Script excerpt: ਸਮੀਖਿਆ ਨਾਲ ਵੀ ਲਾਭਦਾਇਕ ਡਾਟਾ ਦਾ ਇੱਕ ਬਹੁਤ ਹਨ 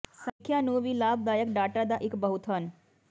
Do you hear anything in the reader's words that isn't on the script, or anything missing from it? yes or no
yes